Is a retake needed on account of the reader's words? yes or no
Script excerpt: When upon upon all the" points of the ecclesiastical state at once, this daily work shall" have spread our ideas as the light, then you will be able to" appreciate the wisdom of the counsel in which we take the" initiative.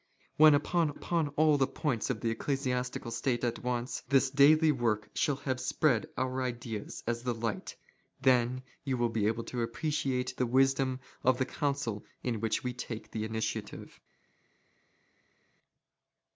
no